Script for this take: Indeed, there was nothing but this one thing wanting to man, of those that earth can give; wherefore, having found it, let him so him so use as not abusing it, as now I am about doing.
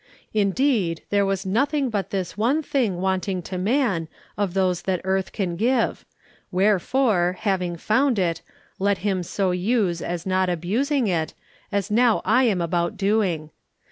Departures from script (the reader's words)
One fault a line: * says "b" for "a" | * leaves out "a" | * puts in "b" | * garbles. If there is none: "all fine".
* leaves out "him so"